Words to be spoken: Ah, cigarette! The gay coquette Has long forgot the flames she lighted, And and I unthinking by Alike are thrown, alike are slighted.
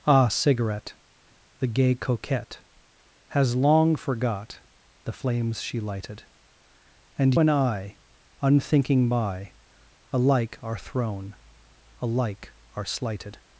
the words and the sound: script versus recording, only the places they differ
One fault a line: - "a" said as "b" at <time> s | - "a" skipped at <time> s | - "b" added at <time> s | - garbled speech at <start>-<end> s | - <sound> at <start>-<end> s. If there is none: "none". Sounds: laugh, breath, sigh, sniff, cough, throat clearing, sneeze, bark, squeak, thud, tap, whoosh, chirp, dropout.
none